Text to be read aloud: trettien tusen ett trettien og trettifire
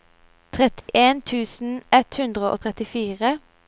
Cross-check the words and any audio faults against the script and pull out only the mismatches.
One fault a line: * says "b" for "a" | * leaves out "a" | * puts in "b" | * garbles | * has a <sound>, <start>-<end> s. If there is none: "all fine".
* has a dropout, 0.8-0.9 s
* says "hundre" for "trettien"